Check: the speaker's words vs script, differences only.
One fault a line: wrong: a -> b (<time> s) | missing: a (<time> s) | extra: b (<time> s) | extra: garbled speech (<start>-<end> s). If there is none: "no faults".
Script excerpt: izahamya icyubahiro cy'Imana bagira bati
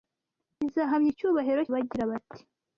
missing: cy'Imana (1.6 s)